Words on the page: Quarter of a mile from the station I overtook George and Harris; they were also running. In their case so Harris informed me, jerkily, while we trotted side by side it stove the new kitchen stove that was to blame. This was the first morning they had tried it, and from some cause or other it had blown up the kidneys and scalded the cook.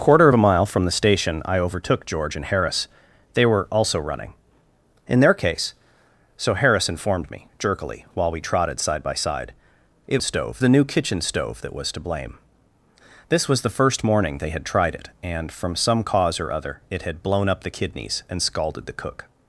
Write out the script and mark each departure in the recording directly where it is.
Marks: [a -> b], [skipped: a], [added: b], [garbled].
Quarter of a mile from the station I overtook George and Harris; they were also running. In their case so Harris informed me, jerkily, while we trotted side by side it stove the new kitchen stove that was to blame. This was the first morning they had tried it, and from some cause or other it had blown up the kidneys and scalded the cook.